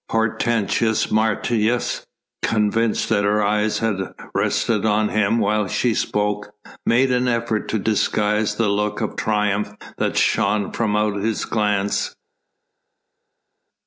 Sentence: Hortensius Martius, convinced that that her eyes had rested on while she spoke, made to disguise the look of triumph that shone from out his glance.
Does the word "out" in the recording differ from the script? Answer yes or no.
no